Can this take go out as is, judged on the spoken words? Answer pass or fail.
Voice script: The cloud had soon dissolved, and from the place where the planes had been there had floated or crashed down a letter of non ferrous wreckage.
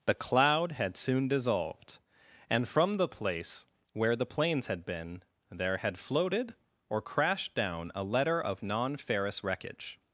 pass